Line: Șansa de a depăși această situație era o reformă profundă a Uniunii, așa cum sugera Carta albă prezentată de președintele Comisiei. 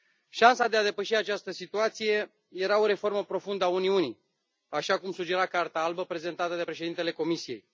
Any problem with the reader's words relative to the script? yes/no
no